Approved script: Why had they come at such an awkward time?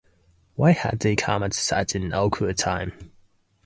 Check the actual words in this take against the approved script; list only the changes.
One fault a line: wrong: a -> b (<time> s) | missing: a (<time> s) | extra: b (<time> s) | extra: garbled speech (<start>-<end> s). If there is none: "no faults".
no faults